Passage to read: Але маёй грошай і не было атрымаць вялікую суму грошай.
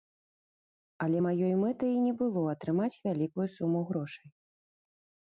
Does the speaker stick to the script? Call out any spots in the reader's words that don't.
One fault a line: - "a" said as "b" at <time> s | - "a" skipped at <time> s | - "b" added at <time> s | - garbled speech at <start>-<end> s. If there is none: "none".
- "грошай" said as "мэтай" at 1.6 s